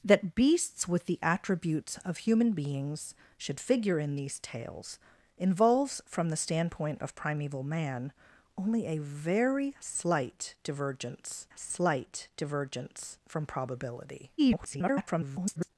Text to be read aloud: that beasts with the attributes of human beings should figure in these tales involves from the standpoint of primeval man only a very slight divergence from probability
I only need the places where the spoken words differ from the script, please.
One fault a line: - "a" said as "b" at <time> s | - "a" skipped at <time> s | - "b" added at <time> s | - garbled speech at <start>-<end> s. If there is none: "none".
- "slight divergence" added at 11.5 s
- garbled speech at 14.4-15.7 s